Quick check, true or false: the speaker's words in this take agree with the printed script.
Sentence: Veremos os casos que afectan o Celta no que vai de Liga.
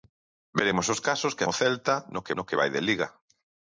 false